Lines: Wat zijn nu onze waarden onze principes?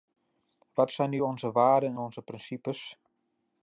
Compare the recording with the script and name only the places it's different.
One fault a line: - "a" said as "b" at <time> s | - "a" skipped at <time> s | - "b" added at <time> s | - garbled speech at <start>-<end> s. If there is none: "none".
none